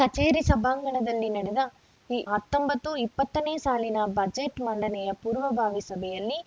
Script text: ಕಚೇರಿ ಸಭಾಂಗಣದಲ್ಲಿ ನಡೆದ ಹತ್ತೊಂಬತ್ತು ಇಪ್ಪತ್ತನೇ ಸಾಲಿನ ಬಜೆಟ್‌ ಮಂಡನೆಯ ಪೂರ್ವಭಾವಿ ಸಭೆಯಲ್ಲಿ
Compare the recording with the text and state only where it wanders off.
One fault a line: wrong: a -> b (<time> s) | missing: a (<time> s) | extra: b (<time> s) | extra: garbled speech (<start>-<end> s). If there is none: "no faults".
no faults